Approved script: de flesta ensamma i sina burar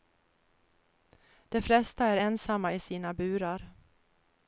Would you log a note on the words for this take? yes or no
yes